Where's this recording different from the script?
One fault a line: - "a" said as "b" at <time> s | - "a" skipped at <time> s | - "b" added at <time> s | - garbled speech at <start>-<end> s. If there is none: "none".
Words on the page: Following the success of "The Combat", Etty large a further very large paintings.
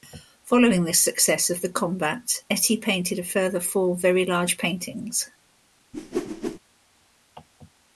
- "large" said as "painted" at 2.8 s
- "four" added at 3.6 s